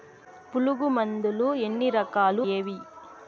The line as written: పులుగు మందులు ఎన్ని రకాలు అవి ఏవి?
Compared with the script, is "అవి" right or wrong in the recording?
wrong